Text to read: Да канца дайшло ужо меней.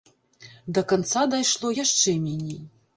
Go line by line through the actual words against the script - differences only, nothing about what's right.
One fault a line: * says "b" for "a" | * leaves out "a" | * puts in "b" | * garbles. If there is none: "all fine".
* says "яшчэ" for "ужо"